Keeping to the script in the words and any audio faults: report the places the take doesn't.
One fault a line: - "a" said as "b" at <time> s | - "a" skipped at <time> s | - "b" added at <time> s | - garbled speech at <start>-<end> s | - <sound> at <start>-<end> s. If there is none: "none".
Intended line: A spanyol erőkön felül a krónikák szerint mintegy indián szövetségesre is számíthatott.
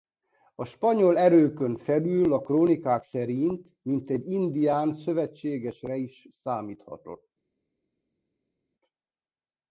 none